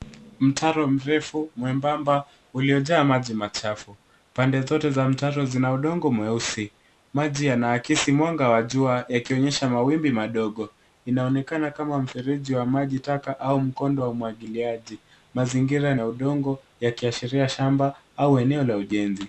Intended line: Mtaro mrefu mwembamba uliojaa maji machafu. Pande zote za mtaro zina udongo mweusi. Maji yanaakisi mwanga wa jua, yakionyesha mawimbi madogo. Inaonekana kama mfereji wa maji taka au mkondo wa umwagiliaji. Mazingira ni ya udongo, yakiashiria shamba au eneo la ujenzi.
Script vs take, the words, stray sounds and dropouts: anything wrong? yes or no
yes